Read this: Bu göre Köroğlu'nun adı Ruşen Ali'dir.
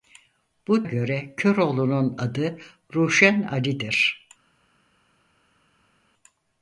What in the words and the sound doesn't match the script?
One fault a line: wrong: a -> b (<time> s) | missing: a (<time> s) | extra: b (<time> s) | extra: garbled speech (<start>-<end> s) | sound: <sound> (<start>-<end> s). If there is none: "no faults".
no faults